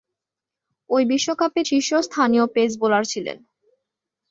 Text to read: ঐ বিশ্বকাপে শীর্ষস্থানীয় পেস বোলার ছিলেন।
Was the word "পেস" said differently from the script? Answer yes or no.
no